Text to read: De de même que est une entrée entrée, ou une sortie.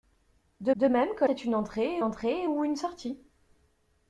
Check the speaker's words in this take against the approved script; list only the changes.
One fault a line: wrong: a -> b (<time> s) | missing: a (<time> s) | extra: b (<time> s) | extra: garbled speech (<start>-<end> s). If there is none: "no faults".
no faults